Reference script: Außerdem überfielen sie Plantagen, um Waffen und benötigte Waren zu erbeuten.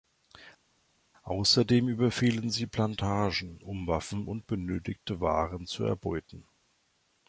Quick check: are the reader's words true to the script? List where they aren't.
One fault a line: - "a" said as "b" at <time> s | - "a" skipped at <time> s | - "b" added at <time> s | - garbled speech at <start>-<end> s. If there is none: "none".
none